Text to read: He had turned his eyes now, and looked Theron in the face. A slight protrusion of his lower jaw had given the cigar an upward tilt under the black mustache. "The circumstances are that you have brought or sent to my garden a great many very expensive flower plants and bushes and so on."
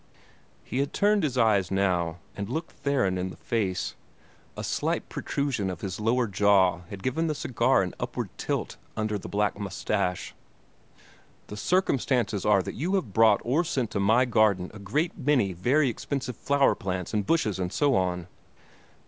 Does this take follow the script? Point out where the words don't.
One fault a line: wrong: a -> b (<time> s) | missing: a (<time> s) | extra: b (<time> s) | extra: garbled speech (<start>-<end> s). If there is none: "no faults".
no faults